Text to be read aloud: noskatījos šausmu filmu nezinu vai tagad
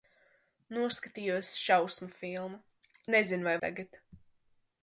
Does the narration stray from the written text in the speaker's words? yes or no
no